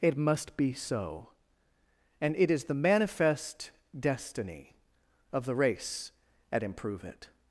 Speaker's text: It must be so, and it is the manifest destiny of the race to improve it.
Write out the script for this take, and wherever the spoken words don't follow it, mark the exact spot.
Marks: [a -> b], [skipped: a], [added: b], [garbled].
It must be so, and it is the manifest destiny of the race [to -> at] improve it.